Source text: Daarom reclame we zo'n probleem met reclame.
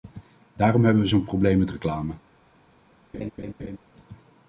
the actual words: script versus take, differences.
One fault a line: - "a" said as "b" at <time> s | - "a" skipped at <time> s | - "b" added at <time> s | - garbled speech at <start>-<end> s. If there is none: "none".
- "reclame" said as "hebben" at 0.8 s